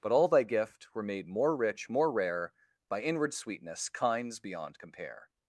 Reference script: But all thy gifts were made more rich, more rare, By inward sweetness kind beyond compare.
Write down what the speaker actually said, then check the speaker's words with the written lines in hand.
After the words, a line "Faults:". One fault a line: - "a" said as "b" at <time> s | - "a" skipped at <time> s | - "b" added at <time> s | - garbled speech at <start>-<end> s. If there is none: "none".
But all thy gift were made more rich, more rare, By inward sweetness kinds beyond compare.
Faults:
- "gifts" said as "gift" at 0.4 s
- "kind" said as "kinds" at 3.9 s